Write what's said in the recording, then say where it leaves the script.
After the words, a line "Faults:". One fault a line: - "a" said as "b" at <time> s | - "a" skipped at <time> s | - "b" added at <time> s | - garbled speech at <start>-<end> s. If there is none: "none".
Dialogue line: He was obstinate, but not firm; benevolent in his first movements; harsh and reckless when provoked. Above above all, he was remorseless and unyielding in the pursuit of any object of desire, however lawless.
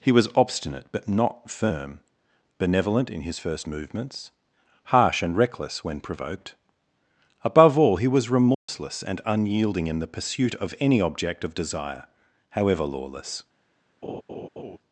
He was obstinate, but not firm; benevolent in his first movements; harsh and reckless when provoked. Above all, he was remorseless and unyielding in the pursuit of any object of desire, however lawless.
Faults:
- "above" skipped at 7.8 s